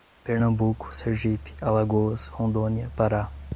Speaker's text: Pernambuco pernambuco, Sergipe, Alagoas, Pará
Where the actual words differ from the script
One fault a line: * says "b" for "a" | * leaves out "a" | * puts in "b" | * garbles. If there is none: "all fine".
* leaves out "pernambuco"
* puts in "Rondônia"